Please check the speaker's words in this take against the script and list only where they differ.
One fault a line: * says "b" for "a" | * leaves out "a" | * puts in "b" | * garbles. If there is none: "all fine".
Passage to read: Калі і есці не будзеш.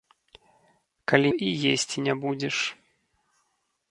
all fine